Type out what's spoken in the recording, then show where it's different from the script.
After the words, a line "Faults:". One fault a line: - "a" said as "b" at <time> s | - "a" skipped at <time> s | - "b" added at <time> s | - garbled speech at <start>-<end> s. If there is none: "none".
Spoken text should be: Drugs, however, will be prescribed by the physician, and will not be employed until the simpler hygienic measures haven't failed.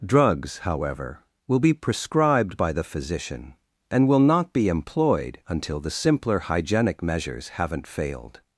Drugs, however, will be prescribed by the physician, and will not be employed until the simpler hygienic measures haven't failed.
Faults:
none